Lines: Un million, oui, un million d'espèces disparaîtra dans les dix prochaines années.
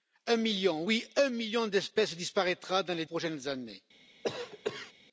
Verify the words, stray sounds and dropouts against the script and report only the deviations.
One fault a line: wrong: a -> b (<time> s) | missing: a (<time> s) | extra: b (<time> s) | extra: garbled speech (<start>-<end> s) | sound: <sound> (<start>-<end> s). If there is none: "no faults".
missing: dix (3.0 s)
sound: cough (4.2-4.9 s)